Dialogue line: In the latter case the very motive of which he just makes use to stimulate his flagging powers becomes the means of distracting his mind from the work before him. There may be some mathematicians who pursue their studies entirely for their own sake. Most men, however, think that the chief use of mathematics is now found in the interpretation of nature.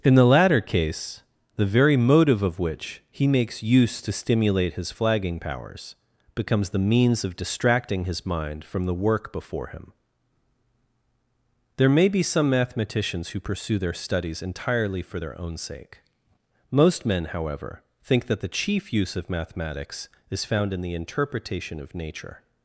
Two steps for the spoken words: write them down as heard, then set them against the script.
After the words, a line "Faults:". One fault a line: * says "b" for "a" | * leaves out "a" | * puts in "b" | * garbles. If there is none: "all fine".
In the latter case the very motive of which he makes use to stimulate his flagging powers becomes the means of distracting his mind from the work before him. There may be some mathematicians who pursue their studies entirely for their own sake. Most men, however, think that the chief use of mathematics is found in the interpretation of nature.
Faults:
* leaves out "just"
* leaves out "now"